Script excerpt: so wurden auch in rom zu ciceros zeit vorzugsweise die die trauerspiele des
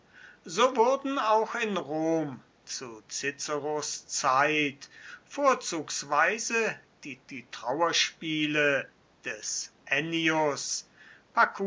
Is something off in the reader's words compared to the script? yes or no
no